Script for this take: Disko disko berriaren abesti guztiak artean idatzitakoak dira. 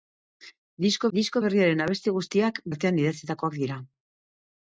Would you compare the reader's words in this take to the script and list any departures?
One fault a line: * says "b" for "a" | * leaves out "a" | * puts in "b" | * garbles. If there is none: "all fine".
all fine